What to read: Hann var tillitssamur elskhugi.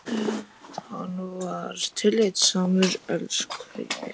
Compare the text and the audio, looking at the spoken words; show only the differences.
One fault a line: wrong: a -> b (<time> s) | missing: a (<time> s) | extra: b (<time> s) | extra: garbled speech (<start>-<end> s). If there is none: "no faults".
no faults